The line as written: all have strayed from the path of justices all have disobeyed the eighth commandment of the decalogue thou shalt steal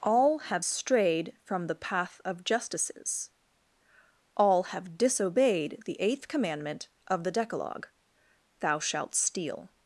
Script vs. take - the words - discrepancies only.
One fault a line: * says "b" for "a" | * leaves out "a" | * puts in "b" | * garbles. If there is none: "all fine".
all fine